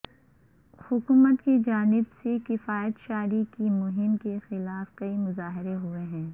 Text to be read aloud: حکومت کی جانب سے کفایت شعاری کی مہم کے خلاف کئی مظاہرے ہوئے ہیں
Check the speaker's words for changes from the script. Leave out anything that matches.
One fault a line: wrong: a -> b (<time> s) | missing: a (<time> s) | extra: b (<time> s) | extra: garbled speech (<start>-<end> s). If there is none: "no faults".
no faults